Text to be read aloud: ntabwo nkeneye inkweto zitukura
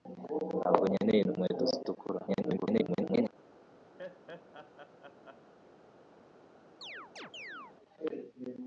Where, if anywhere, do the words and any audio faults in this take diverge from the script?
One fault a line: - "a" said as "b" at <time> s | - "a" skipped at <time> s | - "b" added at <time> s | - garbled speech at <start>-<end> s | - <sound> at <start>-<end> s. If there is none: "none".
- garbled speech at 2.3-3.3 s
- laugh at 4.0-5.5 s
- chirp at 6.8-7.8 s